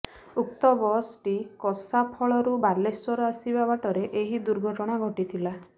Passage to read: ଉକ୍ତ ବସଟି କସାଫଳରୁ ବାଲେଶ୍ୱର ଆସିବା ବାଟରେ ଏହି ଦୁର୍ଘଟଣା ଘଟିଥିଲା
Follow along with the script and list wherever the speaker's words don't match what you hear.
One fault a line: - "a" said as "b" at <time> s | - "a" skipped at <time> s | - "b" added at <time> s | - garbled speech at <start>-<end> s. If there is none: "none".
none